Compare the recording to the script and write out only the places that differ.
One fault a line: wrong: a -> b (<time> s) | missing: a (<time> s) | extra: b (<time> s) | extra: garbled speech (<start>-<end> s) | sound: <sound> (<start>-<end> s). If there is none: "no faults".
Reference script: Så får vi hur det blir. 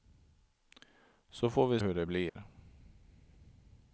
sound: dropout (2.3-2.4 s)